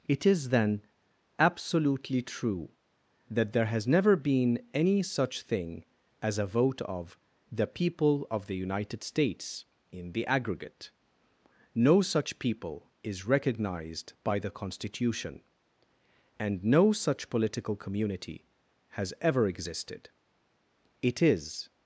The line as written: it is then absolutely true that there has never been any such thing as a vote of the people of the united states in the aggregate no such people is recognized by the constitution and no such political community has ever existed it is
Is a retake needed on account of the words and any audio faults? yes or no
no